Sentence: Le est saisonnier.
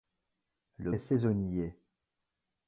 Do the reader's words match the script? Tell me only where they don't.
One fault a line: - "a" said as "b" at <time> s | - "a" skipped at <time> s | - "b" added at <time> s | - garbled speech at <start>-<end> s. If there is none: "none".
none